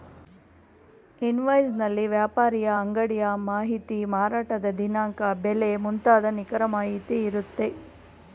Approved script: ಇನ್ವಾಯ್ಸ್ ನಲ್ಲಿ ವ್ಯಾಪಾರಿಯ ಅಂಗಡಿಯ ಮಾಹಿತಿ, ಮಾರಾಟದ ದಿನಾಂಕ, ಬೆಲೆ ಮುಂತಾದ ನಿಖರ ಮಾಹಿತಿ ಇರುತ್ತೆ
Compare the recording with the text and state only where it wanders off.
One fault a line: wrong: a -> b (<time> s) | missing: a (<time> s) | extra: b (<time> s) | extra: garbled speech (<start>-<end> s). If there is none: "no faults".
no faults